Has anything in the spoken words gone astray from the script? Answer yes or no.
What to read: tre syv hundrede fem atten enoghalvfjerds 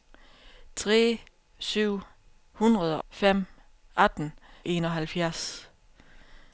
no